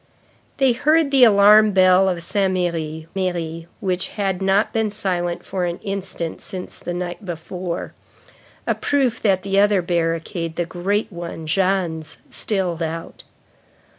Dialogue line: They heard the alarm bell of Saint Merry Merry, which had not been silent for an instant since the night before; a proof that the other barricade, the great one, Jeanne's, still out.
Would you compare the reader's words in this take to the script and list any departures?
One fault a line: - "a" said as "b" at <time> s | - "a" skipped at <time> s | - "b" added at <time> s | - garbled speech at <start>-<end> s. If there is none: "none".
none